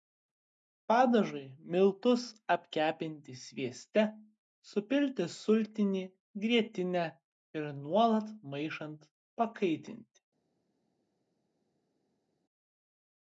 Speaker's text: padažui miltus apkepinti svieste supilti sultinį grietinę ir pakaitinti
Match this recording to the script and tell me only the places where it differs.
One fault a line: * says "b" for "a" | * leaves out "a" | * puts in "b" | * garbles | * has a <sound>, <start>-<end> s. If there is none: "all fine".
* puts in "nuolat maišant"